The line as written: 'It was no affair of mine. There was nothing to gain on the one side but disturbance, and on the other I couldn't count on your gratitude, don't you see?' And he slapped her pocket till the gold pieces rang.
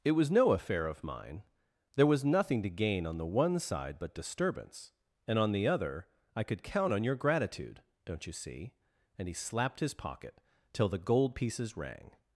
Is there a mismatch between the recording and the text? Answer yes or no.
yes